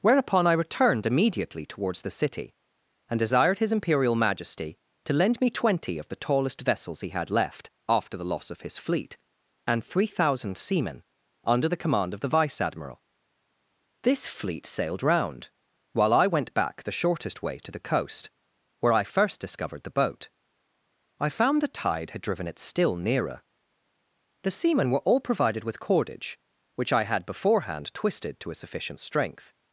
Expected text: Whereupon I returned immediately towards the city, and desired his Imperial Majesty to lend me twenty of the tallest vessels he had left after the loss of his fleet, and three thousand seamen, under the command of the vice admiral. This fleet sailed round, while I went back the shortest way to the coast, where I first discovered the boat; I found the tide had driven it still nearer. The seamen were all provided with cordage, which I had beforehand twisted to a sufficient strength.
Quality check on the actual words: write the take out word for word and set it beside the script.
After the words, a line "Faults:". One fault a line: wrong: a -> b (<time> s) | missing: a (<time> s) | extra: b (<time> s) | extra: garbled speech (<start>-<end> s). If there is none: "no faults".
Whereupon I returned immediately towards the city, and desired his Imperial Majesty to lend me twenty of the tallest vessels he had left after the loss of his fleet, and three thousand seamen, under the command of the vice admiral. This fleet sailed round, while I went back the shortest way to the coast, where I first discovered the boat; I found the tide had driven it still nearer. The seamen were all provided with cordage, which I had beforehand twisted to a sufficient strength.
Faults:
no faults